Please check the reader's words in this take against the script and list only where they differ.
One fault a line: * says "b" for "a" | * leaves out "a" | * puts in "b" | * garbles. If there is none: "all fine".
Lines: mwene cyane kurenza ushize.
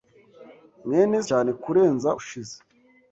all fine